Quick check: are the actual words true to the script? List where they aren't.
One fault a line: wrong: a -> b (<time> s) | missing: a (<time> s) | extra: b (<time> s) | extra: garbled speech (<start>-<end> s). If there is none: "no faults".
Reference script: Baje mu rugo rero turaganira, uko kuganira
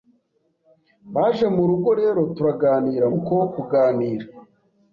no faults